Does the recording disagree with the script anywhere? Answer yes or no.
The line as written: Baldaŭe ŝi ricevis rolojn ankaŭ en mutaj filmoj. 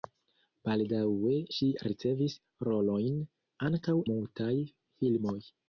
yes